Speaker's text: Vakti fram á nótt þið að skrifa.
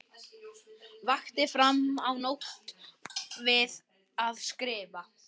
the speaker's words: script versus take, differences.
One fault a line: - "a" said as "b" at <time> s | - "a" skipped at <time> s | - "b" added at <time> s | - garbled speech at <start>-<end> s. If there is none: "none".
- "þið" said as "við" at 3.5 s